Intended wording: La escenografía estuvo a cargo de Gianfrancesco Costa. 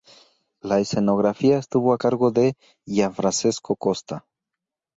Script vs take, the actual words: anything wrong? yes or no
no